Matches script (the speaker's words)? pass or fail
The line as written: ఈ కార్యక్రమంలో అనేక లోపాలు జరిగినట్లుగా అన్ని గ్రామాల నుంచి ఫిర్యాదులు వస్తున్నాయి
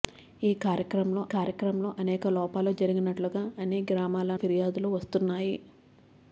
fail